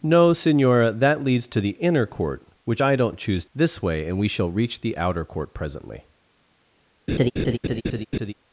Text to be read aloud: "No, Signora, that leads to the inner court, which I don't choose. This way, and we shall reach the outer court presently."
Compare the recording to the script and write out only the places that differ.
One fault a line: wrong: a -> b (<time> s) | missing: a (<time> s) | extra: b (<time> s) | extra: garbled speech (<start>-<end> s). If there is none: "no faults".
no faults